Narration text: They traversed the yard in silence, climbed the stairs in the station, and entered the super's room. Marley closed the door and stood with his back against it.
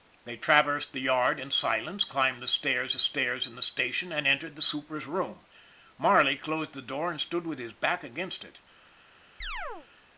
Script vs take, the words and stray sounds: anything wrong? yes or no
yes